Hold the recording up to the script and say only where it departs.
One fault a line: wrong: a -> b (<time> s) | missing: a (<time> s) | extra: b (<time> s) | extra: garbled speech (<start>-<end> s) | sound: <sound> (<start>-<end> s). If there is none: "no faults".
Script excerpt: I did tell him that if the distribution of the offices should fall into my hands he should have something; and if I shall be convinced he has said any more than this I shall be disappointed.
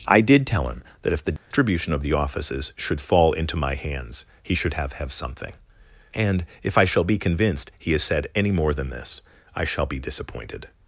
sound: dropout (1.4-1.5 s)
extra: have (4.9 s)